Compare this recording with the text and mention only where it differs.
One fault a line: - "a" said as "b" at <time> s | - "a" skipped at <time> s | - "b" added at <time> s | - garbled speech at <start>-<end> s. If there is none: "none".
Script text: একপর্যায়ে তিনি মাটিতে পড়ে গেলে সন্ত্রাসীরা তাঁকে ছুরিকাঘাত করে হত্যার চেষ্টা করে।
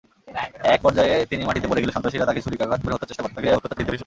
- garbled speech at 3.4-4.0 s